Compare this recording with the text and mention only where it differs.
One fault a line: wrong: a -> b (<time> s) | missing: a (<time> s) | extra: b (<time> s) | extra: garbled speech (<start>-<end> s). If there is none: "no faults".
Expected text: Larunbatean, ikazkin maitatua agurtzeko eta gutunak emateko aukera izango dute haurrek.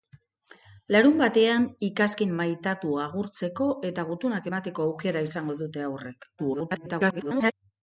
extra: garbled speech (6.4-7.5 s)